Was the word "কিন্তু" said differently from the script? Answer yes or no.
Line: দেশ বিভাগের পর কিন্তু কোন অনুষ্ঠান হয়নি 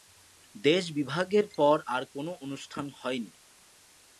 yes